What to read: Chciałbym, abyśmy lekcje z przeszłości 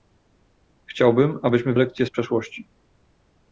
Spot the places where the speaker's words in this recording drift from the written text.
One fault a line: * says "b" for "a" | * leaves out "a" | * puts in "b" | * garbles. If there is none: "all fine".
all fine